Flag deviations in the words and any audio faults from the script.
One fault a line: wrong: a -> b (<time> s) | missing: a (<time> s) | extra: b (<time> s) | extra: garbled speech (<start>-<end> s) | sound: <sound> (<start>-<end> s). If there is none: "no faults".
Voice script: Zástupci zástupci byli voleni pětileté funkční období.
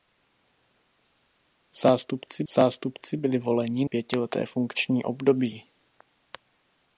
no faults